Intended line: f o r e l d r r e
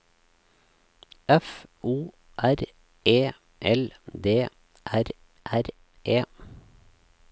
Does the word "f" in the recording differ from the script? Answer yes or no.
no